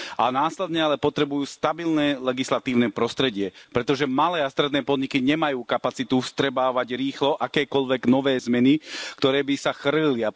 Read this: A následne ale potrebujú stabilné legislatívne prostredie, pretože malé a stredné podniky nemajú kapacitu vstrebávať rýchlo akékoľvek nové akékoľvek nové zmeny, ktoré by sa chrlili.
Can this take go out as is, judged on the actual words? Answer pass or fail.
fail